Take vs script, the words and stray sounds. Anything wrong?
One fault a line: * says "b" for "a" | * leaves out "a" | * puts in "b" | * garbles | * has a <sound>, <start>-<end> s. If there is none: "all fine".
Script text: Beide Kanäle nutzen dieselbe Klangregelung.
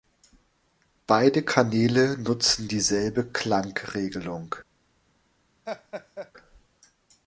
* has a laugh, 5.7-6.3 s